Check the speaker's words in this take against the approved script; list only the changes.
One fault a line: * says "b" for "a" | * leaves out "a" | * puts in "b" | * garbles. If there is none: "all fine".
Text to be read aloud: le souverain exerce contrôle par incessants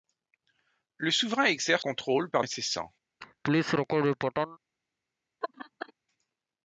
all fine